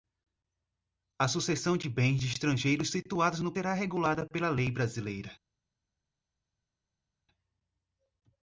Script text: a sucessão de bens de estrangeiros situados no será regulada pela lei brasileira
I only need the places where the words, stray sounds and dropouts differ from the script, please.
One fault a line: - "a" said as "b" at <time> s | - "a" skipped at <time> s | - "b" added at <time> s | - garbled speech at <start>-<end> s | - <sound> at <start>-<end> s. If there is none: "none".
none